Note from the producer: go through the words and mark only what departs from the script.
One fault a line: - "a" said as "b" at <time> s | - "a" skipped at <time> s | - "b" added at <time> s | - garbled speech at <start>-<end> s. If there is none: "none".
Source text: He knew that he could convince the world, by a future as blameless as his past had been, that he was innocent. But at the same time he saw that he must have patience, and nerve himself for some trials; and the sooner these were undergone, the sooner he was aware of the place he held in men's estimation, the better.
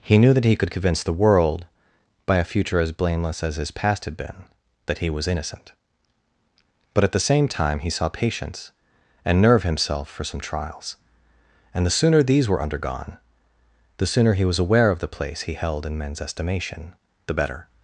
- "that he must have" skipped at 8.1 s